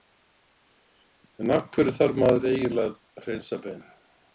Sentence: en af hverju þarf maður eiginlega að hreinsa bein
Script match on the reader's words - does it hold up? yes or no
yes